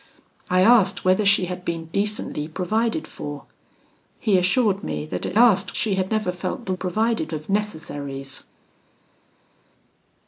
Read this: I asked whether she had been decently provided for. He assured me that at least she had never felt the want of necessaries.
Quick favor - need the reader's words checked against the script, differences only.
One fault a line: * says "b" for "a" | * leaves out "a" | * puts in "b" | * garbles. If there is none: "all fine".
* says "asked" for "least"
* says "provided" for "want"